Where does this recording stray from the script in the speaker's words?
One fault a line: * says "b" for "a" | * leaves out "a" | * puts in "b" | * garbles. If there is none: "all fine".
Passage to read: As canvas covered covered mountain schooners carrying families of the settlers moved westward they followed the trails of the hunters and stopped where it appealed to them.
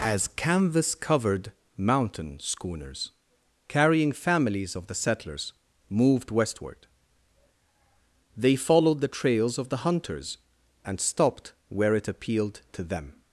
* leaves out "covered"